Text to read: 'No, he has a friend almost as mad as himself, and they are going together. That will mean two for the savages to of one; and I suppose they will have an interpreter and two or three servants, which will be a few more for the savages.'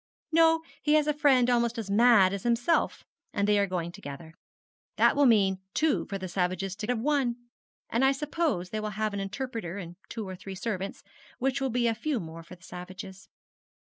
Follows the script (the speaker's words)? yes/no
yes